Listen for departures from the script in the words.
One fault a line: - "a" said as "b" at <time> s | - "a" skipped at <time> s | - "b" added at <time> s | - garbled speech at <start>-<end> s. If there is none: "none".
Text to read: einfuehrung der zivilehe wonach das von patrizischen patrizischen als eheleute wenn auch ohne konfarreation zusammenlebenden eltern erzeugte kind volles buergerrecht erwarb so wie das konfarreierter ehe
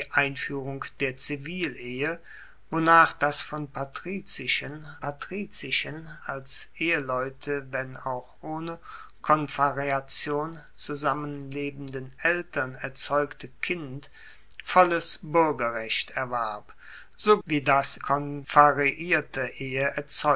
none